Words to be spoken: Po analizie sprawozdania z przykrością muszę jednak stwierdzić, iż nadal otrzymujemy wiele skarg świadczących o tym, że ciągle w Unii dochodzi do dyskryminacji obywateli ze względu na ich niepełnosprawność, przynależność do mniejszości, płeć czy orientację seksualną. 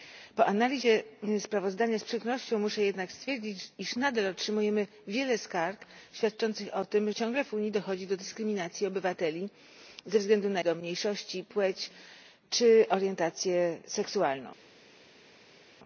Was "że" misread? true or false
true